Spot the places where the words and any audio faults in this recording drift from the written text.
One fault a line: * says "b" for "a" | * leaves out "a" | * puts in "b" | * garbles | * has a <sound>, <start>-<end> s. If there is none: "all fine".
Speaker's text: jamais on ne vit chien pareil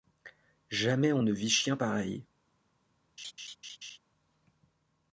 * has a laugh, 3.2-4.0 s